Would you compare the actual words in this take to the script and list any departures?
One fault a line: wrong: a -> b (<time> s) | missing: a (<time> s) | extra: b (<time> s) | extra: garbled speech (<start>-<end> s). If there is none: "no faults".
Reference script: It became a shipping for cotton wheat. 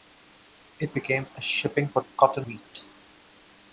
no faults